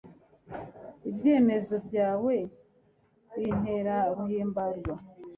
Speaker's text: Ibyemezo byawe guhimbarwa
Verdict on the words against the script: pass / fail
fail